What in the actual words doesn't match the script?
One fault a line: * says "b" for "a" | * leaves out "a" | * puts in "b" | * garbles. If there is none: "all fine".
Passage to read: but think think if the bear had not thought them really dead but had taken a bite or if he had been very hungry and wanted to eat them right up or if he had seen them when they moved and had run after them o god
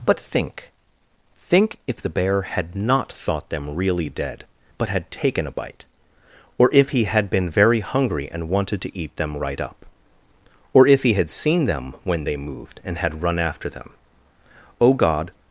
all fine